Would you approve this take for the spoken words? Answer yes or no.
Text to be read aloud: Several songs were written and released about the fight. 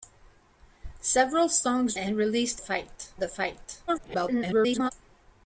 no